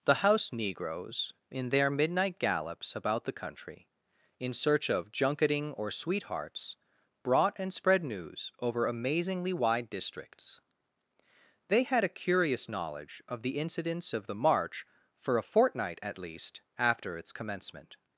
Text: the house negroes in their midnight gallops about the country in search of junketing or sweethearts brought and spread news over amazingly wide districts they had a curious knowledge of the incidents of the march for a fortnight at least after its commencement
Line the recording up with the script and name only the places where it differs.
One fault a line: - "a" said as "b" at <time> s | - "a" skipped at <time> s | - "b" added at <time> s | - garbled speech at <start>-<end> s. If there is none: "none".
none